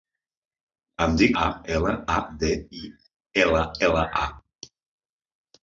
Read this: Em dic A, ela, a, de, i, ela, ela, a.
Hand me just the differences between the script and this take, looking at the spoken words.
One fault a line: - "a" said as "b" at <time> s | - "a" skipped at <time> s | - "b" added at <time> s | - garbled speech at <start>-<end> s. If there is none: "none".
none